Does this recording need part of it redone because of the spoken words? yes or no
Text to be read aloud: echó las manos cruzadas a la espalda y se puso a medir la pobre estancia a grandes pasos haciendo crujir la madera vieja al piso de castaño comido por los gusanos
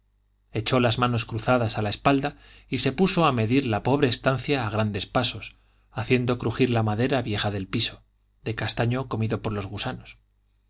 yes